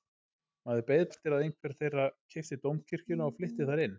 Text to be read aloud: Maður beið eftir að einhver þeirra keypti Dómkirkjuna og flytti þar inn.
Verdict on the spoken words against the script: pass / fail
pass